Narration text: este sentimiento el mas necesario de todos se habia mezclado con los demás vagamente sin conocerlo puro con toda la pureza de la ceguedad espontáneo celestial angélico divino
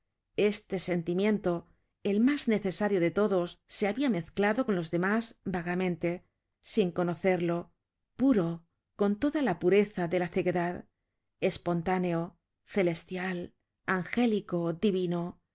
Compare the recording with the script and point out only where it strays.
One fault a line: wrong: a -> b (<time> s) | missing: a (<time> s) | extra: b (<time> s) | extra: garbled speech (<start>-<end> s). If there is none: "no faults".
no faults